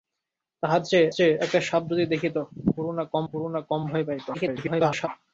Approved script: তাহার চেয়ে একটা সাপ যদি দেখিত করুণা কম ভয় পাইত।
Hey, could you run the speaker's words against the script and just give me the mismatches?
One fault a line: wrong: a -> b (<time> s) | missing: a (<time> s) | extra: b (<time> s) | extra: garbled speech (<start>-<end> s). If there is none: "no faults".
extra: চেয়ে (1.1 s)
extra: করুণা কম (3.3 s)
extra: garbled speech (4.3-5.1 s)